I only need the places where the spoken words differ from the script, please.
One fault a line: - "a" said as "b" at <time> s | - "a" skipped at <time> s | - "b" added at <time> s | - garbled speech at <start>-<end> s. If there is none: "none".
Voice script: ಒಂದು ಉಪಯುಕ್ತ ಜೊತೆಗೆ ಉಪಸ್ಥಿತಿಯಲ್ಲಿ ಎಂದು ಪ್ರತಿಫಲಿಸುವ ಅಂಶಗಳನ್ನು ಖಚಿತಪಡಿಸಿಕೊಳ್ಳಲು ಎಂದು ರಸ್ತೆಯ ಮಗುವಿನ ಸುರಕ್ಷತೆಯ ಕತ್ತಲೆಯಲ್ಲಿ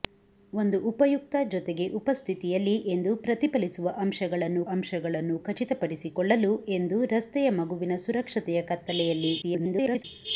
- "ಅಂಶಗಳನ್ನು" added at 4.7 s
- garbled speech at 9.4-10.0 s